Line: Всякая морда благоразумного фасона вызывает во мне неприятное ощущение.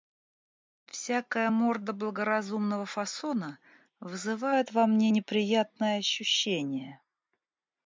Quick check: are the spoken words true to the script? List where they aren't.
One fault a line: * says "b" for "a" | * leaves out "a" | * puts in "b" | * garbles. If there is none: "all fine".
all fine